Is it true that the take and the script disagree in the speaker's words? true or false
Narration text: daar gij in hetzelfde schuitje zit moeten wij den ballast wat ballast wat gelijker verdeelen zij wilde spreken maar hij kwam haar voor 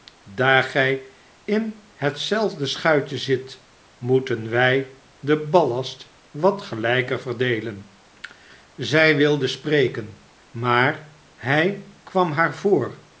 true